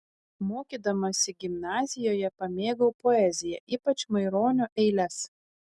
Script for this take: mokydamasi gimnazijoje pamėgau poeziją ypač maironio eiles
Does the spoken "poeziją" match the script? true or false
true